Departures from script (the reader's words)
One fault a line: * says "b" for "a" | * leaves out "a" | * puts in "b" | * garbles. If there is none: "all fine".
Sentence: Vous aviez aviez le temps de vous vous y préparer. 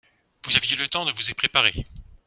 * leaves out "aviez"
* leaves out "vous"